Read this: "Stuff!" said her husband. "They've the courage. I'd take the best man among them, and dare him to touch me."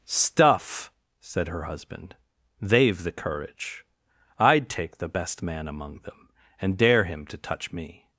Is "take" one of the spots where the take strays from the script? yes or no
no